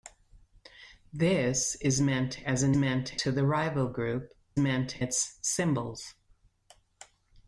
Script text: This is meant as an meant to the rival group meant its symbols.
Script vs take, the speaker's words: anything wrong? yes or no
no